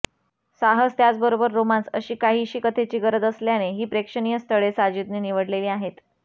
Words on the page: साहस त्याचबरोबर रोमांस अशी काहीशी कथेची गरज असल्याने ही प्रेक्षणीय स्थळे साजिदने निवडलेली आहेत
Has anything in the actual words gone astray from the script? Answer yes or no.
no